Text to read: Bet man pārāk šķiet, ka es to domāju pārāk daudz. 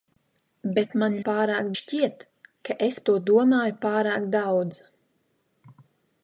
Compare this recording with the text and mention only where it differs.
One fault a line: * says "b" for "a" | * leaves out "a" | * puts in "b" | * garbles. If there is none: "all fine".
all fine